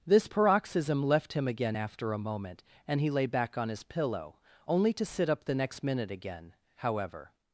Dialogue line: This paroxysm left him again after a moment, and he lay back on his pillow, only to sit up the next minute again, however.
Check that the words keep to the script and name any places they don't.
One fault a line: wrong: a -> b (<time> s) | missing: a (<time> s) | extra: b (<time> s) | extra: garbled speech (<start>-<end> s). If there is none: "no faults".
no faults